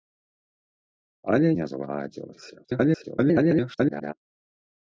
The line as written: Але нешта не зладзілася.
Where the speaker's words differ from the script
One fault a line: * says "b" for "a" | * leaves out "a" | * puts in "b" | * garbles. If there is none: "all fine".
* leaves out "нешта"
* garbles